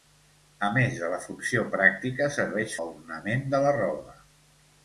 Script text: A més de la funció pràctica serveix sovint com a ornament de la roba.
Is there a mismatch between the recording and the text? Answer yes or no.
yes